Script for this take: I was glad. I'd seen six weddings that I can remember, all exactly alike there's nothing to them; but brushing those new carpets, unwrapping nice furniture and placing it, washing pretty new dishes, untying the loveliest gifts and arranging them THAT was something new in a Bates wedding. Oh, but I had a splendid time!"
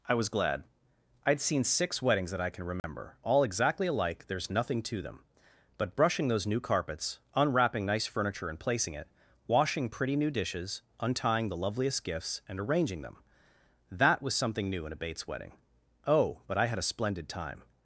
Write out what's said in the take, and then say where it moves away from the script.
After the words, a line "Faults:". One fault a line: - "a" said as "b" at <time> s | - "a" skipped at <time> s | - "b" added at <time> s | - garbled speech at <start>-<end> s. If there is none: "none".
I was glad. I'd seen six weddings that I can remember, all exactly alike there's nothing to them; but brushing those new carpets, unwrapping nice furniture and placing it, washing pretty new dishes, untying the loveliest gifts and arranging them THAT was something new in a Bates wedding. Oh, but I had a splendid time!"
Faults:
none